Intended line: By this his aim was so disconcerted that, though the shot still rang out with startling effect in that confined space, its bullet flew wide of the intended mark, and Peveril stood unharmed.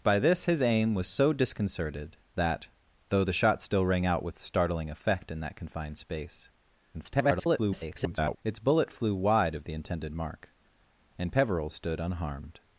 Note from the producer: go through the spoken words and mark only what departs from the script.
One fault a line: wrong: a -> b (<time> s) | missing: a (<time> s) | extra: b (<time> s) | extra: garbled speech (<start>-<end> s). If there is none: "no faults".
extra: garbled speech (6.9-8.4 s)